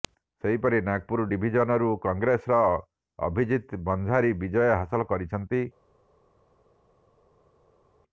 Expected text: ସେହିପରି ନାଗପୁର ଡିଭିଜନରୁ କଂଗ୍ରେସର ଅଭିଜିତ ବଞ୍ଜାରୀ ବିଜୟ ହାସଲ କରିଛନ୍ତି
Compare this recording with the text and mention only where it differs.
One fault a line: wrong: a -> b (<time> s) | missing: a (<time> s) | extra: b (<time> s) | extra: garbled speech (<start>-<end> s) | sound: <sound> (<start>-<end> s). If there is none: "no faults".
no faults